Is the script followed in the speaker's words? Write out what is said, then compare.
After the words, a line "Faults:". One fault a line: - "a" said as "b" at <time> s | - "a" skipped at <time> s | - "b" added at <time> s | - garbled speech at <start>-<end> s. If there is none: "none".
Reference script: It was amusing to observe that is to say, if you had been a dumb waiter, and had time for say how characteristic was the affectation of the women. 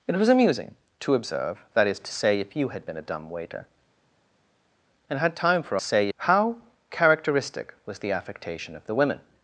It was amusing to observe that is to say, if you had been a dumb waiter, and had time for say how characteristic was the affectation of the women.
Faults:
none